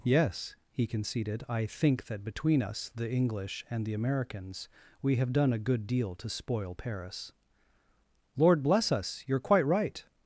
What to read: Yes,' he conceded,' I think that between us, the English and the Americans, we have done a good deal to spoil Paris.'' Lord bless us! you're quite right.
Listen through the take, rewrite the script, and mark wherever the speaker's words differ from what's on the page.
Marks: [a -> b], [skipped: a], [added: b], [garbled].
Yes,' he conceded,' I think that between us, the English and the Americans, we have done a good deal to spoil Paris.'' Lord bless us! you're quite right.